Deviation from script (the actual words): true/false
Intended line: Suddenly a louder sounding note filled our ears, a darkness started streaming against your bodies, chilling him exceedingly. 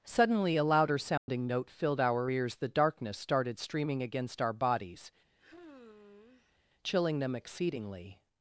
true